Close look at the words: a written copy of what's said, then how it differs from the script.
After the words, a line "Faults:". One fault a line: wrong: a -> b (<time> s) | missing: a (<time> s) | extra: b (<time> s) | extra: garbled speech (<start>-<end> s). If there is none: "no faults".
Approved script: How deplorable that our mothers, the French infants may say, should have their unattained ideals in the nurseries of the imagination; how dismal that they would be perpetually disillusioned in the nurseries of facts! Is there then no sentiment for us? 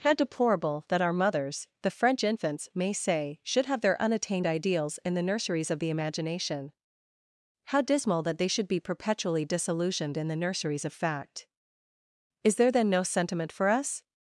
How deplorable that our mothers, the French infants may say, should have their unattained ideals in the nurseries of the imagination; how dismal that they should be perpetually disillusioned in the nurseries of fact! Is there then no sentiment for us?
Faults:
wrong: would -> should (8.5 s)
wrong: facts -> fact (10.9 s)